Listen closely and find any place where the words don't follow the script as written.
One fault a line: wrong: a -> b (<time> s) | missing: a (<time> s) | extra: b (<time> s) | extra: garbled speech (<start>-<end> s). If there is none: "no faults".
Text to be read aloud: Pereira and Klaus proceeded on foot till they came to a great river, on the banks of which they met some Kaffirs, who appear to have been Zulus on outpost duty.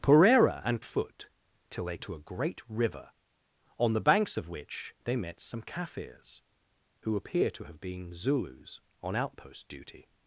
missing: Klaus proceeded on (0.8 s)
missing: came (2.0 s)